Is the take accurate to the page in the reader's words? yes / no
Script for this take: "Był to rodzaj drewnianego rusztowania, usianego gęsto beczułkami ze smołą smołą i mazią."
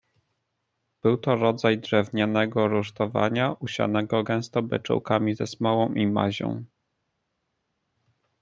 no